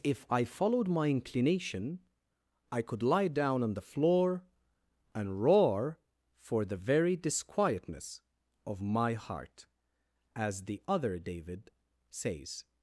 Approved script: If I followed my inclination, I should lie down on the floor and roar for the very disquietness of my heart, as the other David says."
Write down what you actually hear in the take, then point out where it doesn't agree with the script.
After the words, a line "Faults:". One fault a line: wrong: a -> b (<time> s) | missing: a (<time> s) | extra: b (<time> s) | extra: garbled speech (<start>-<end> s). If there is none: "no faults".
If I followed my inclination, I could lie down on the floor and roar for the very disquietness of my heart, as the other David says."
Faults:
wrong: should -> could (2.8 s)